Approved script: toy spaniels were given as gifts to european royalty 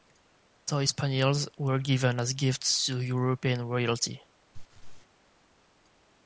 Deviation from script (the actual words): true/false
false